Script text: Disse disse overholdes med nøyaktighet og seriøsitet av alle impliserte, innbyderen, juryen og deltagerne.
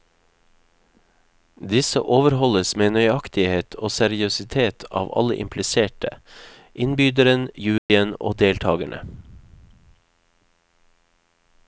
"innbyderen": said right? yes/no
yes